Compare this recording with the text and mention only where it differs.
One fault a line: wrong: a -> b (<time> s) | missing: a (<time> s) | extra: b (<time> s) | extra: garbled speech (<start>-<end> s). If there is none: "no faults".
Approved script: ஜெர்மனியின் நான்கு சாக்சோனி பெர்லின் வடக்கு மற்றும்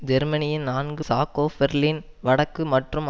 no faults